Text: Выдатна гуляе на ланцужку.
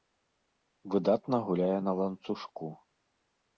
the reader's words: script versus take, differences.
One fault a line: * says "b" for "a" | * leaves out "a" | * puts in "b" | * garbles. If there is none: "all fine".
all fine